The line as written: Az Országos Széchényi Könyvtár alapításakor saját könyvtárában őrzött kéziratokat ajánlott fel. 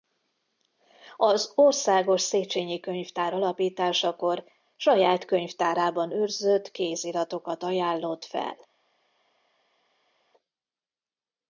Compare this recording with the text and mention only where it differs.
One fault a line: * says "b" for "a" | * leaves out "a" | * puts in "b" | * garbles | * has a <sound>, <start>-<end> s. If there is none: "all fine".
all fine